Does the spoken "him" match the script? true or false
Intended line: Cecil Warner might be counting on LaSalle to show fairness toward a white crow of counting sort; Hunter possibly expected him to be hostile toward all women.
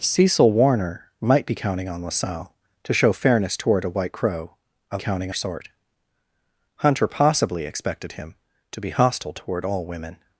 true